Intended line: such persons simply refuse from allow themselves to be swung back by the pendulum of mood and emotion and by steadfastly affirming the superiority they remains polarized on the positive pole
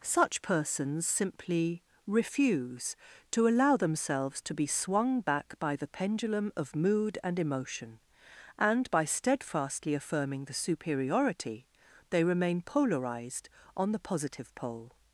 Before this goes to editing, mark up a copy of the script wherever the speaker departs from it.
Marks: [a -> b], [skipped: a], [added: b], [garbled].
such persons simply refuse [from -> to] allow themselves to be swung back by the pendulum of mood and emotion and by steadfastly affirming the superiority they [remains -> remain] polarized on the positive pole